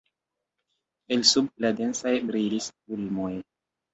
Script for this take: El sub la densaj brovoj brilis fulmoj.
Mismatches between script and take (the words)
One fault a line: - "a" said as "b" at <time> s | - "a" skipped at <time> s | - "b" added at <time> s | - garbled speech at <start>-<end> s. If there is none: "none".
- "brovoj" skipped at 2.1 s